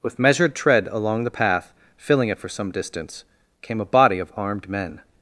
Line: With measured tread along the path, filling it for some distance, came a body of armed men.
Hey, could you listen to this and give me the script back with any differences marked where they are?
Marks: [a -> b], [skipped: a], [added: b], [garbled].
With measured tread along the path, filling it for some distance, came a body of armed men.